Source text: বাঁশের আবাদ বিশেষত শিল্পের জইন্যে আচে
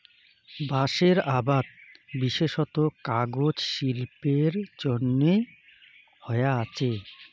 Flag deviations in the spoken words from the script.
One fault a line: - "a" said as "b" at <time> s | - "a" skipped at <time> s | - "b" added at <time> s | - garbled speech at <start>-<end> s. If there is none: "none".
- "কাগজ" added at 3.0 s
- "হয়া" added at 6.2 s